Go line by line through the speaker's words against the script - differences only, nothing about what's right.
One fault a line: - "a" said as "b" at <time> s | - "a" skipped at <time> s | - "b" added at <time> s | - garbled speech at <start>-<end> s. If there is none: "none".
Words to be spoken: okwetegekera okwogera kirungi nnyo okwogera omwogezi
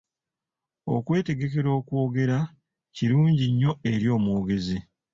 - "okwogera" said as "eri" at 3.9 s